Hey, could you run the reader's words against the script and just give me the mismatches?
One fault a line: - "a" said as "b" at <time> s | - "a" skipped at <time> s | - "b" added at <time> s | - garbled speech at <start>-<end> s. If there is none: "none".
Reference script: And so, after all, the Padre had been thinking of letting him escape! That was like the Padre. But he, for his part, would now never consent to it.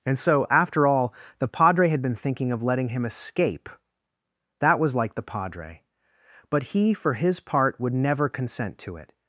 - "now" skipped at 8.0 s